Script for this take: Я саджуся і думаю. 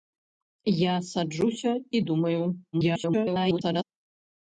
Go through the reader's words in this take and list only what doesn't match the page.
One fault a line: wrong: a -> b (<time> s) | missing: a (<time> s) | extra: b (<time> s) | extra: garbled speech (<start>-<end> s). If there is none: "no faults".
extra: garbled speech (2.7-3.8 s)